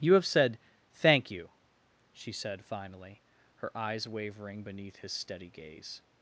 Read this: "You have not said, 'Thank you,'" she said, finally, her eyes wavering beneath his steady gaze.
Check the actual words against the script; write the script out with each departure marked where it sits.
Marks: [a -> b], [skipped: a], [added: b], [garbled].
"You have [skipped: not] said, 'Thank you,'" she said, finally, her eyes wavering beneath his steady gaze.